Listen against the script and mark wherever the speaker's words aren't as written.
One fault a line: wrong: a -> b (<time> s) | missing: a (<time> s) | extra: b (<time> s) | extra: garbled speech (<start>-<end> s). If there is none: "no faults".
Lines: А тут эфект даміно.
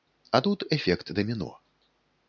no faults